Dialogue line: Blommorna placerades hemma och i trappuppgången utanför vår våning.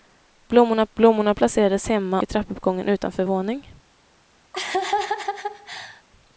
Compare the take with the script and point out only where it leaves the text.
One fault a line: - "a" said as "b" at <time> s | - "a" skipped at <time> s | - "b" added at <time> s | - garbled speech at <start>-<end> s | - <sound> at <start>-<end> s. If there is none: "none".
- "blommorna" added at 0.9 s
- "och" skipped at 2.2 s
- "vår" skipped at 3.2 s
- laugh at 4.5-6.0 s